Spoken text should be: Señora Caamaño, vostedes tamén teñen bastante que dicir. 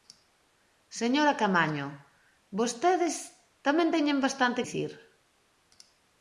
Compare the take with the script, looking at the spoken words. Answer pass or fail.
fail